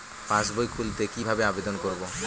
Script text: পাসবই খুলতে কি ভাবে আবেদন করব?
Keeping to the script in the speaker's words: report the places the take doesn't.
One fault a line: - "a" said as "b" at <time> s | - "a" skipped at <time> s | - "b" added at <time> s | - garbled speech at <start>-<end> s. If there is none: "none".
none